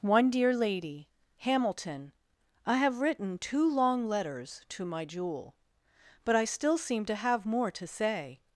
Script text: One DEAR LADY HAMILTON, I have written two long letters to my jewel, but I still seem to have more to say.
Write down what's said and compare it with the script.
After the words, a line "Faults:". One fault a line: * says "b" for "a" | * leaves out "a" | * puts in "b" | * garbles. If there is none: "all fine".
One DEAR LADY HAMILTON, I have written two long letters to my jewel, but I still seem to have more to say.
Faults:
all fine